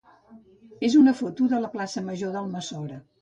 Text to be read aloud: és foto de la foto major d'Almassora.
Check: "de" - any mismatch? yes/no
no